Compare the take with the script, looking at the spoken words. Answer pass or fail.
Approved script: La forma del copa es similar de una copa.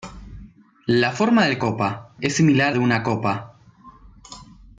pass